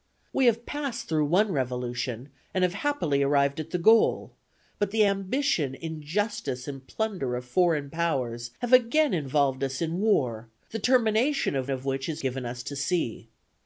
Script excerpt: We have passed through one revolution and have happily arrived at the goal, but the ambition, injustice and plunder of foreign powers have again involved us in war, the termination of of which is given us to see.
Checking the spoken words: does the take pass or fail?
pass